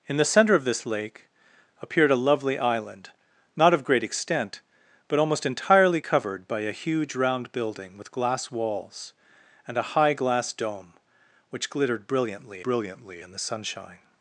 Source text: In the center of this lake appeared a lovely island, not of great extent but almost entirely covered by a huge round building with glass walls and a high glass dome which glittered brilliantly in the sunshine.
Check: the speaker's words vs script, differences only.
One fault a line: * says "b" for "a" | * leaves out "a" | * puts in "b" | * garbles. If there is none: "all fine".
* puts in "brilliantly"